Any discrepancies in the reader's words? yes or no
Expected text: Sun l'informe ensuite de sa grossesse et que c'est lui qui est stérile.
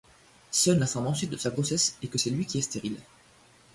no